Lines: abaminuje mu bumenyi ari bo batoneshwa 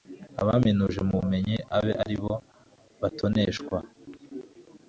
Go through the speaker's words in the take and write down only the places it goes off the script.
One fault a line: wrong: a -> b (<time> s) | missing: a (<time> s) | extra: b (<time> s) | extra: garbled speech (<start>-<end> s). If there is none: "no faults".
extra: abe (1.8 s)